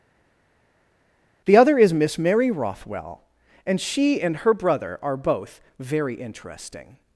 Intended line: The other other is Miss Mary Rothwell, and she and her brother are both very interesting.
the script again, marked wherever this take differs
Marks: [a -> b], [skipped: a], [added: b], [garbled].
The other [skipped: other] is Miss Mary Rothwell, and she and her brother are both very interesting.